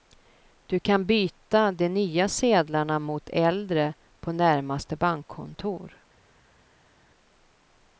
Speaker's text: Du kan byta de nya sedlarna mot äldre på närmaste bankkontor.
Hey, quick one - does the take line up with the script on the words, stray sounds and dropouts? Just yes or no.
yes